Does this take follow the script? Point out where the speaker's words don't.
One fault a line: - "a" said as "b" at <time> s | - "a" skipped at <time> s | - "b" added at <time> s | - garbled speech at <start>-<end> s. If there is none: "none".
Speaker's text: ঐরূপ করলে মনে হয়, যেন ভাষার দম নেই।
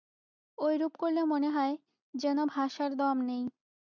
none